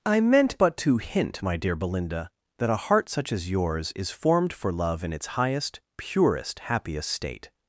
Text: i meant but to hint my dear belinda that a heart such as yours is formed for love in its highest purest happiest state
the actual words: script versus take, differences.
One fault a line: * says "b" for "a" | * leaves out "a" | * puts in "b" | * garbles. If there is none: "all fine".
all fine